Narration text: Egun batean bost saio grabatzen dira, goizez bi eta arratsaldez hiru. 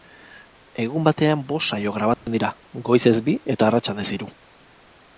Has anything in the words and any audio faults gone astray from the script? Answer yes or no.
yes